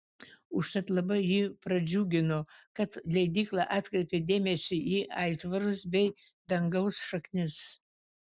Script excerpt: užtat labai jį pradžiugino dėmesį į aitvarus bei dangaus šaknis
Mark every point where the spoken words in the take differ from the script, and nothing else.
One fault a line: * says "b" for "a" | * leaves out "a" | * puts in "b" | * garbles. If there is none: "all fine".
* puts in "kad leidykla atkreipė"